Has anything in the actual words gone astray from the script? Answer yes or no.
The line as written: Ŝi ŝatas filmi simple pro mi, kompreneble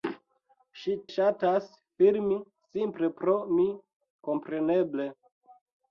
no